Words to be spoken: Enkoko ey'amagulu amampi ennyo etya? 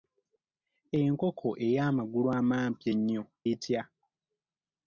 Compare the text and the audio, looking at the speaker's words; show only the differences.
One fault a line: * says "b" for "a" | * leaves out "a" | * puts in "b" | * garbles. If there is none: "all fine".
all fine